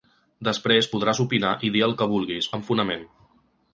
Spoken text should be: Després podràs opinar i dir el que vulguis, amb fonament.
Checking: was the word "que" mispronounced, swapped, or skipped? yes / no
no